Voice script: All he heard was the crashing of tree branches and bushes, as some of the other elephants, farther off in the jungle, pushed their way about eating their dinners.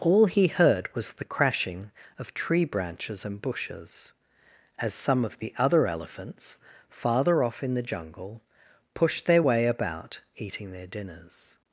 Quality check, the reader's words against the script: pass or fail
pass